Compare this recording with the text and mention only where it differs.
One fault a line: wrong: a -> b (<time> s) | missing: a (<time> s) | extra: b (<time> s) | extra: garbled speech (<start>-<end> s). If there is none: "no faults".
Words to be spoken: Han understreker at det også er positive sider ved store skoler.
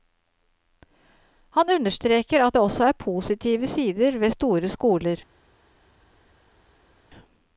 no faults